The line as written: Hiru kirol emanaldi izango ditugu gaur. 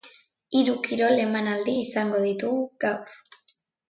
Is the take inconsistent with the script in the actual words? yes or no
no